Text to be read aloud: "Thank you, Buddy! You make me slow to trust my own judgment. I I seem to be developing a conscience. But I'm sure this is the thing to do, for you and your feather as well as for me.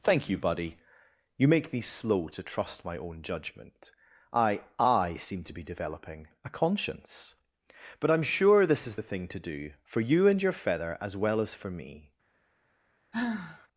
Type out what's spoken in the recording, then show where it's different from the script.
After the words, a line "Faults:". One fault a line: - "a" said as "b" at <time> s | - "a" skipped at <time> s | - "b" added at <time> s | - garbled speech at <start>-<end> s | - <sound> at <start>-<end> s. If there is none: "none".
"Thank you, Buddy! You make me slow to trust my own judgment. I I seem to be developing a conscience. But I'm sure this is the thing to do, for you and your feather as well as for me.
Faults:
- sigh at 13.1-13.7 s